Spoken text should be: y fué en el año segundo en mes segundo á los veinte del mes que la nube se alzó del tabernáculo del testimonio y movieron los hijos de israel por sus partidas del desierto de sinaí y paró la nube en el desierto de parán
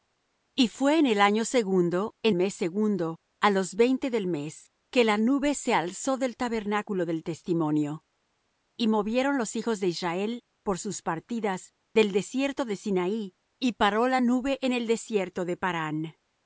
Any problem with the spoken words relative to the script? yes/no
no